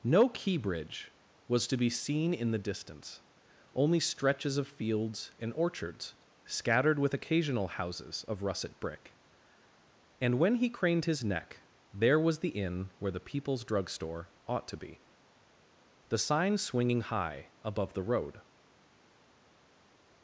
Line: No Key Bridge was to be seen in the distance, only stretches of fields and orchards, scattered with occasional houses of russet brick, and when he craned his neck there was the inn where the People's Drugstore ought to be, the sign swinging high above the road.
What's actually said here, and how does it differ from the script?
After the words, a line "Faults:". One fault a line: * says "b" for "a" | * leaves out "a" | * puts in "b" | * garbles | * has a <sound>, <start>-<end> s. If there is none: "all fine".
No Key Bridge was to be seen in the distance, only stretches of fields and orchards, scattered with occasional houses of russet brick, and when he craned his neck there was the inn where the People's Drugstore ought to be, the sign swinging high above the road.
Faults:
all fine